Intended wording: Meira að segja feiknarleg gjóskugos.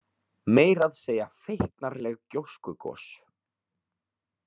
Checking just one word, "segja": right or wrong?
right